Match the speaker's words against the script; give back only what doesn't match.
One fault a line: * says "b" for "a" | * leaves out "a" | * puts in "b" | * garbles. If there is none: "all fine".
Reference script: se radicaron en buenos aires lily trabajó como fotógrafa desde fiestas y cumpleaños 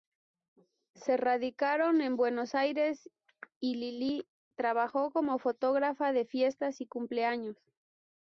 * puts in "y"
* says "de" for "desde"